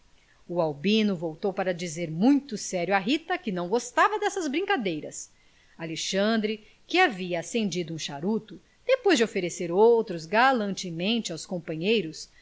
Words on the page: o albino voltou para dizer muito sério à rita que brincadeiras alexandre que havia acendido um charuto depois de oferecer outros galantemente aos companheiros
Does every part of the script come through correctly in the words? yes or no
no